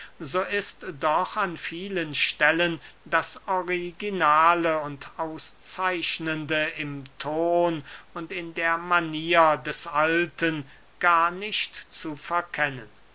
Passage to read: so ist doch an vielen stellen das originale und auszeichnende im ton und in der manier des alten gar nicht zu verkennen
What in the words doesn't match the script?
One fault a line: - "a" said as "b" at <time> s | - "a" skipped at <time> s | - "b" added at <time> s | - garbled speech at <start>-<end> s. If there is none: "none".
none